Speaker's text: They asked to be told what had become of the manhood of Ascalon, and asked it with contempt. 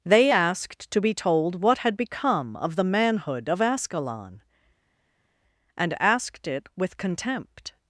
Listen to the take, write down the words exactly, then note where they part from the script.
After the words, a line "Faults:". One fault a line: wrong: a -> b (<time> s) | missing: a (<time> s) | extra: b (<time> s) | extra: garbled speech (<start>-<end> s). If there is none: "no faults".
They asked to be told what had become of the manhood of Ascalon, and asked it with contempt.
Faults:
no faults